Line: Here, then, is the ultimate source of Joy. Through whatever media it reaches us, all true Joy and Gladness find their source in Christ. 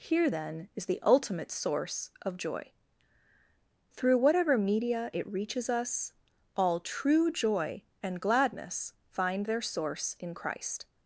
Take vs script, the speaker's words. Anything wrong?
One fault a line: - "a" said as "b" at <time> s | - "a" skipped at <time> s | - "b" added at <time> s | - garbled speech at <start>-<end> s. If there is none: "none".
none